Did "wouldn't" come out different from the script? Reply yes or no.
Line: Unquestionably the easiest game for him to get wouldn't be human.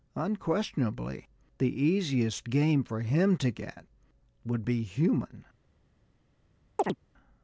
yes